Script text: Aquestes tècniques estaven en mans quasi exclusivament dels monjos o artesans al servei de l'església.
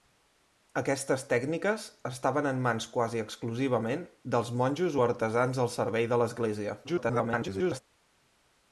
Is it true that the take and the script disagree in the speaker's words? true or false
true